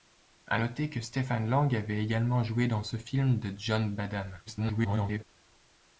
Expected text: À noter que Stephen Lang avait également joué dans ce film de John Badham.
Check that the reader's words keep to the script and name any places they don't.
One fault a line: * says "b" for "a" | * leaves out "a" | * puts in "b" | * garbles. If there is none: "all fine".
* garbles